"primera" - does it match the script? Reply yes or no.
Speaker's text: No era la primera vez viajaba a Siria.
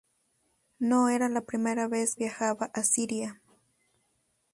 yes